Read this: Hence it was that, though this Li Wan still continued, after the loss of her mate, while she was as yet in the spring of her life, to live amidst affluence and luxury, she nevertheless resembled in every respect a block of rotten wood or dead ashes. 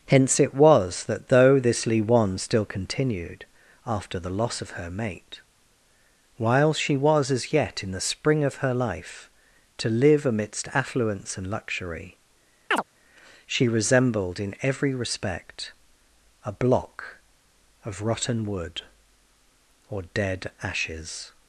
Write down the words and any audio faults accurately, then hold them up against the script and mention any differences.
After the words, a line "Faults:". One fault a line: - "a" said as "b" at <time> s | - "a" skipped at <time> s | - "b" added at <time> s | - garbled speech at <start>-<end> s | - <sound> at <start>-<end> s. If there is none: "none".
Hence it was that, though this Li Wan still continued, after the loss of her mate, while she was as yet in the spring of her life, to live amidst affluence and luxury, she resembled in every respect a block of rotten wood or dead ashes.
Faults:
- chirp at 12.7-12.8 s
- "nevertheless" skipped at 13.7 s